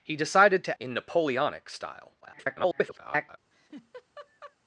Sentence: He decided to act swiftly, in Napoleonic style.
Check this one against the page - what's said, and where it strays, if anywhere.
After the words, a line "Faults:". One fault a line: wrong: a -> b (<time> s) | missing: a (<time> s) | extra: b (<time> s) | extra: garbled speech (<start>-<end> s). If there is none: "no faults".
He decided to in Napoleonic style. [garbled]
Faults:
missing: act swiftly (0.8 s)
extra: garbled speech (2.2-3.4 s)